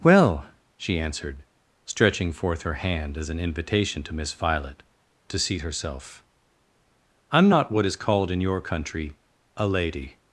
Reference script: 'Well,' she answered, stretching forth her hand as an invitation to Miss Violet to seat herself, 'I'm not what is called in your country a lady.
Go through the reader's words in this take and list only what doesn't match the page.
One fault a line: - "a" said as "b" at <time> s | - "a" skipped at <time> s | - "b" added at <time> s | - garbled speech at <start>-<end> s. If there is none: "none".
none